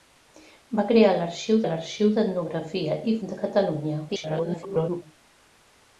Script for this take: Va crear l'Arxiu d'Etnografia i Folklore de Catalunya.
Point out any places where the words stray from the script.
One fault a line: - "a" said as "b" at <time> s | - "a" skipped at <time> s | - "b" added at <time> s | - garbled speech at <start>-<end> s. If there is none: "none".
- "l'Arxiu" added at 1.7 s
- "Folklore" skipped at 3.1 s
- garbled speech at 4.1-5.0 s